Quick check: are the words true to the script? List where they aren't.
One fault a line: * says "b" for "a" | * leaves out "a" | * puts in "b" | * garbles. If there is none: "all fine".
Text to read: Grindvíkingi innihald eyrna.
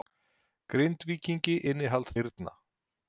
all fine